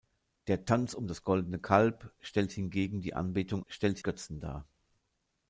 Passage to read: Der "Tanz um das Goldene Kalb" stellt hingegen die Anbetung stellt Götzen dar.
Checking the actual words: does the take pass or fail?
pass